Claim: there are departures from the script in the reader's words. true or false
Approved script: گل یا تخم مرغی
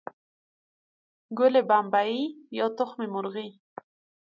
true